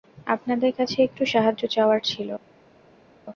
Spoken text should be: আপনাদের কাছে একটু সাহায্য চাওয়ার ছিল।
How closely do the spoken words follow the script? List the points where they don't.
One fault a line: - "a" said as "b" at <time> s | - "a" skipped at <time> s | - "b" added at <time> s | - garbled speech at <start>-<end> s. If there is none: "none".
none